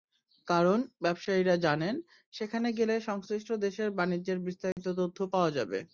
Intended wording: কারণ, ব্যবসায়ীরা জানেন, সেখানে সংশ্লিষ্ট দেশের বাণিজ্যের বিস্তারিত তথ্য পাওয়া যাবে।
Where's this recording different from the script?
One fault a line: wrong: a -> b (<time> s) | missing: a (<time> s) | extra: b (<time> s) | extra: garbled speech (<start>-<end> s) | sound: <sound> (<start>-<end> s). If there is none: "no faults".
extra: গেলে (2.7 s)
sound: dropout (4.7-4.8 s)